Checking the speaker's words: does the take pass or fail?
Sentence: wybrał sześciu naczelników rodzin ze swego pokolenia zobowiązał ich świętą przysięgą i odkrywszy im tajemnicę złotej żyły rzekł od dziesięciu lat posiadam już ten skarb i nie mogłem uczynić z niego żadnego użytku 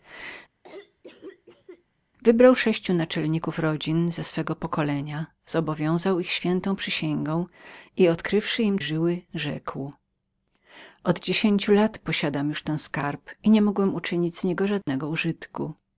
fail